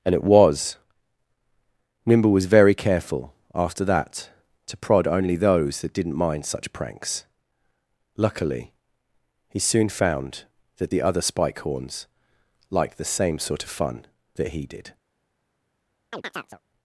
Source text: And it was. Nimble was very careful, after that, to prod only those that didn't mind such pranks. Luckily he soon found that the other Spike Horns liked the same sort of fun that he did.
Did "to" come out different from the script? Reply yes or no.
no